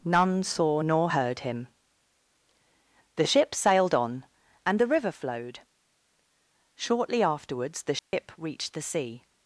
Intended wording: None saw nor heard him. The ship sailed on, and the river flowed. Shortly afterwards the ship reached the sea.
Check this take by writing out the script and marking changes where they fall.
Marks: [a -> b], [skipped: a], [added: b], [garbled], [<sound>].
None saw nor heard him. The ship sailed on, and the river flowed. Shortly afterwards the ship [dropout] reached the sea.